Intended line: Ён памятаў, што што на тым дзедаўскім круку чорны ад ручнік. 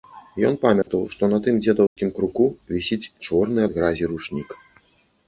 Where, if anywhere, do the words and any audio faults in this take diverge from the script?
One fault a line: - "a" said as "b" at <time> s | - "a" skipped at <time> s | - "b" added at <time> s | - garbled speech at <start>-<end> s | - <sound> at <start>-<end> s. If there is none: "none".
- dropout at 0.8-0.9 s
- "што" skipped at 1.3 s
- dropout at 1.9-2.0 s
- "вісіць" added at 2.8 s
- "гразі" added at 3.8 s